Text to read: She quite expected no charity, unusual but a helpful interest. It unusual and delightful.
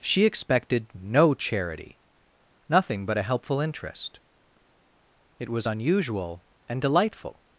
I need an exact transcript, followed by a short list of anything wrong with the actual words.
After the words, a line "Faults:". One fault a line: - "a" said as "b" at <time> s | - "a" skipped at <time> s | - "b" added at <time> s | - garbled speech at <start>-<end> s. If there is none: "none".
She expected no charity, nothing but a helpful interest. It was unusual and delightful.
Faults:
- "quite" skipped at 0.2 s
- "unusual" said as "nothing" at 2.7 s
- "was" added at 5.5 s